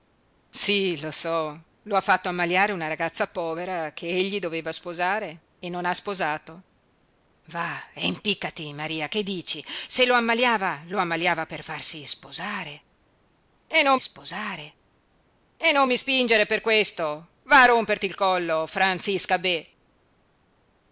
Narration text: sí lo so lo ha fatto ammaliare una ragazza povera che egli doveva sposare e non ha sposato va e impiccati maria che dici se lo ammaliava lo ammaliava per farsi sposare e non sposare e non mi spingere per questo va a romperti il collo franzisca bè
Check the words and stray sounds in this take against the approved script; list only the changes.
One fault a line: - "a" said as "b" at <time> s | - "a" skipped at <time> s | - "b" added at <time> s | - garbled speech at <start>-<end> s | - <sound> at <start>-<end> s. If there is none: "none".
none